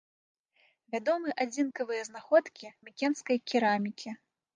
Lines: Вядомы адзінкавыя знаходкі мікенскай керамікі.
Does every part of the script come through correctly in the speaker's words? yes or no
yes